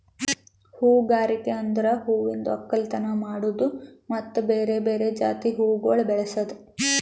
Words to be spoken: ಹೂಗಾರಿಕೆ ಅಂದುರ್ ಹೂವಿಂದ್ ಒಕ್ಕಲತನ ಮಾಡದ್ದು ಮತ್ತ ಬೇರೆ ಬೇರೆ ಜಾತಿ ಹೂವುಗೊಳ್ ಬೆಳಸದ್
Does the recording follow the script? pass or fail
pass